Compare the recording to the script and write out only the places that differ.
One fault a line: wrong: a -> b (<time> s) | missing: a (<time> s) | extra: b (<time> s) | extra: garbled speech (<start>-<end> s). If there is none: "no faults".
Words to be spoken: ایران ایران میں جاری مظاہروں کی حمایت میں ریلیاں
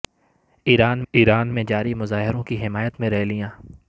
no faults